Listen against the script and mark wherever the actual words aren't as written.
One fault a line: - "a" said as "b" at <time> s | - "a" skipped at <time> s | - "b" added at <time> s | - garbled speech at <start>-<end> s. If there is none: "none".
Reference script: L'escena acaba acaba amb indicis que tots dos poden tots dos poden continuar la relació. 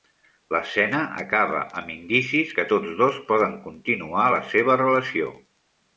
- "acaba" skipped at 1.6 s
- "tots dos poden" skipped at 3.5 s
- "seva" added at 4.6 s